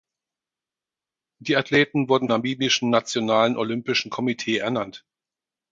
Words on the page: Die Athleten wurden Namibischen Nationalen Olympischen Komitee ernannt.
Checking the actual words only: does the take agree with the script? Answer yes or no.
yes